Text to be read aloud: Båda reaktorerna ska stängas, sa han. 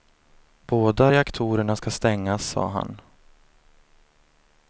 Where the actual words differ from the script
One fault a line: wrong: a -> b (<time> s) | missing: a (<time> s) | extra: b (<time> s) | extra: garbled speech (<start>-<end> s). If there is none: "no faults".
no faults